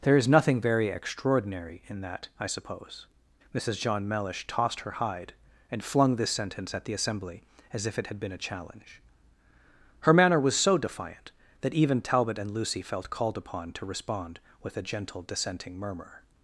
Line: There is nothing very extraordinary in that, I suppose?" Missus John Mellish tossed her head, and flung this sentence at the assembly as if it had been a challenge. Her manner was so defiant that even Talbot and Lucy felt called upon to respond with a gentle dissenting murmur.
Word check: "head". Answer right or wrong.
wrong